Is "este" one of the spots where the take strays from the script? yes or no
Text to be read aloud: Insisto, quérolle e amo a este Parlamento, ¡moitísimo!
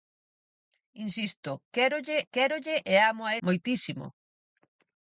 yes